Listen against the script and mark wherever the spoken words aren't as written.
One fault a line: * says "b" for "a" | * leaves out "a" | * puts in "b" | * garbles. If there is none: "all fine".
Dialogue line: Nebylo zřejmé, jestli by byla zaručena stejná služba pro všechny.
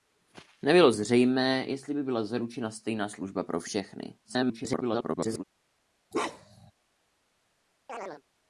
* garbles